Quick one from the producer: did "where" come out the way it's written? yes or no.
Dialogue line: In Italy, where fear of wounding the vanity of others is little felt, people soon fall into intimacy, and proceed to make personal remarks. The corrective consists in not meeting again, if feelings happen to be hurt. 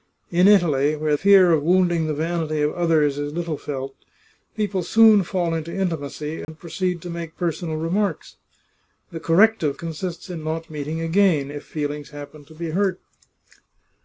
yes